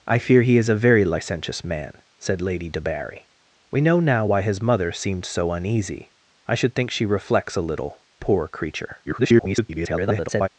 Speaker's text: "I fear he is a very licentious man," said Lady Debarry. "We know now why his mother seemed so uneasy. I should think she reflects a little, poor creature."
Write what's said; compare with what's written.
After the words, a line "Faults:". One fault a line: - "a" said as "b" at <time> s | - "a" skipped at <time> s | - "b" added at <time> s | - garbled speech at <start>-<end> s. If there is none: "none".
"I fear he is a very licentious man," said Lady Debarry. "We know now why his mother seemed so uneasy. I should think she reflects a little, poor creature." [garbled]
Faults:
- garbled speech at 9.1-10.5 s